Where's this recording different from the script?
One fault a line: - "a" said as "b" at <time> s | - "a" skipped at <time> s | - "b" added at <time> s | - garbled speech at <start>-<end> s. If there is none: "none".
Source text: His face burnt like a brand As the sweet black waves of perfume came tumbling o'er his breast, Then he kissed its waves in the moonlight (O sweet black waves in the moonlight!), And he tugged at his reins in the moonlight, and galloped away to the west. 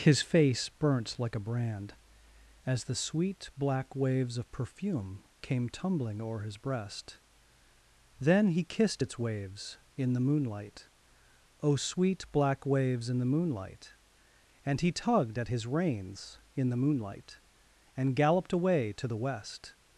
none